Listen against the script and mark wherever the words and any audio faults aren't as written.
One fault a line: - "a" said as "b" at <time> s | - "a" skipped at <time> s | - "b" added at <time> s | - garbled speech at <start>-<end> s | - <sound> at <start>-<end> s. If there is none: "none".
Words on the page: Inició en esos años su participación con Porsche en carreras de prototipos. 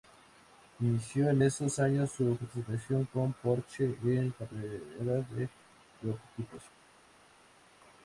none